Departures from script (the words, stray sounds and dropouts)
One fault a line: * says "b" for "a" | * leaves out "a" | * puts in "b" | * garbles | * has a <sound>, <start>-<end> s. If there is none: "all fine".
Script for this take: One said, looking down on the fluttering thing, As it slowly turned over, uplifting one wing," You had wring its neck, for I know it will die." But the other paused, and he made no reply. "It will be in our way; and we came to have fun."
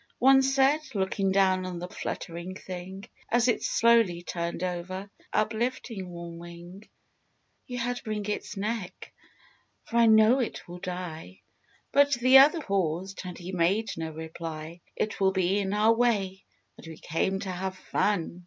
all fine